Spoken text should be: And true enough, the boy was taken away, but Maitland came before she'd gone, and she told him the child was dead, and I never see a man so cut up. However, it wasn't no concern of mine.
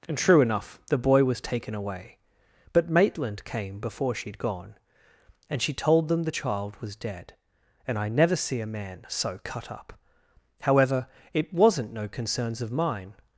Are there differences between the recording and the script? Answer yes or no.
yes